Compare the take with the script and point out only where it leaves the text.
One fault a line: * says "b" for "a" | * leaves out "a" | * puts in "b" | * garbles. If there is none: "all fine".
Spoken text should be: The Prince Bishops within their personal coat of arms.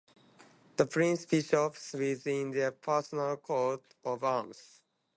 all fine